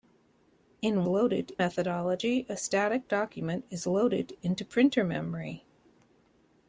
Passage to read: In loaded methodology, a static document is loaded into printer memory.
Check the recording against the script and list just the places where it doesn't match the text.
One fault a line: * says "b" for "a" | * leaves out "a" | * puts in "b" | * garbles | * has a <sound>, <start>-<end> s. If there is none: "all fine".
all fine